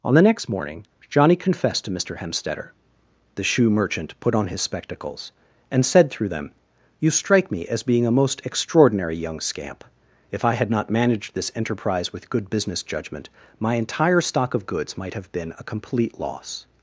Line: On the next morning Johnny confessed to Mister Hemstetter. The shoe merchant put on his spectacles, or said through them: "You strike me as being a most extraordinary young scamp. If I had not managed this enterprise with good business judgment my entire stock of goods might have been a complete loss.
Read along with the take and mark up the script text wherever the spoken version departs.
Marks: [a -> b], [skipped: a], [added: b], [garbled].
On the next morning Johnny confessed to Mister Hemstetter. The shoe merchant put on his spectacles, [or -> and] said through them: "You strike me as being a most extraordinary young scamp. If I had not managed this enterprise with good business judgment my entire stock of goods might have been a complete loss.